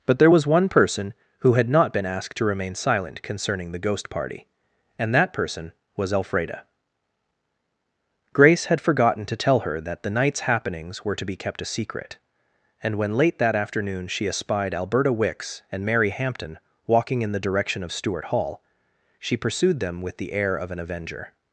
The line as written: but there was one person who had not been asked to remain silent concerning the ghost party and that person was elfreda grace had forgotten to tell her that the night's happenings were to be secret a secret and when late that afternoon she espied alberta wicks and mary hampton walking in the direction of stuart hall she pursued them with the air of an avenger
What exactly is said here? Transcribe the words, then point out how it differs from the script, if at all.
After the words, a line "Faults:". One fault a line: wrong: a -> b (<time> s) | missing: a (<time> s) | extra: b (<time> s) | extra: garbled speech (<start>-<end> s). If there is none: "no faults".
but there was one person who had not been asked to remain silent concerning the ghost party and that person was elfreda grace had forgotten to tell her that the night's happenings were to be kept a secret and when late that afternoon she espied alberta wicks and mary hampton walking in the direction of stuart hall she pursued them with the air of an avenger
Faults:
wrong: secret -> kept (11.3 s)